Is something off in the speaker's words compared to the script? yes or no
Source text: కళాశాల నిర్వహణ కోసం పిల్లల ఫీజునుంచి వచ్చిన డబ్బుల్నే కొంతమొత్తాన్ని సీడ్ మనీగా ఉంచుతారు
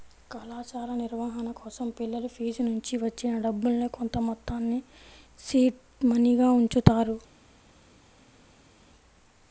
no